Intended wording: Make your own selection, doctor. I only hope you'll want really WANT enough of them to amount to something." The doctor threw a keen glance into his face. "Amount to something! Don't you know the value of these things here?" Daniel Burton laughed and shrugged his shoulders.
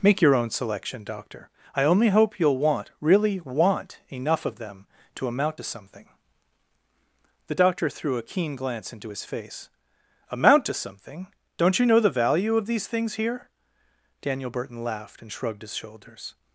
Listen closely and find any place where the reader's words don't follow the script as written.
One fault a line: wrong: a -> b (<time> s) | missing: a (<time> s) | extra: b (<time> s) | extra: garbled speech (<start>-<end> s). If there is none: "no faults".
no faults